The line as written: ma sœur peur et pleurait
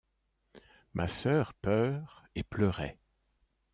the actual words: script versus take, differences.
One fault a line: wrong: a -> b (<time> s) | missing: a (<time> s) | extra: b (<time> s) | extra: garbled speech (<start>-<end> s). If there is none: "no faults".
no faults